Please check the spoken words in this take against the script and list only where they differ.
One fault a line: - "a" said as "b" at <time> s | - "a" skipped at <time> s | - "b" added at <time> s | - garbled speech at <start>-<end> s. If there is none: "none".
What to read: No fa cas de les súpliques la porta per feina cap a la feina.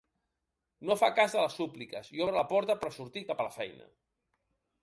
- "i obre" added at 2.1 s
- "feina" said as "sortir" at 3.0 s